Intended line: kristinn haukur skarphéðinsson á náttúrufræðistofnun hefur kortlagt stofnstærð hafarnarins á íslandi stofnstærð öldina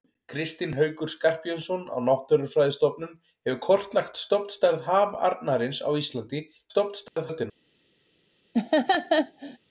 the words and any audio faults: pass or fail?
fail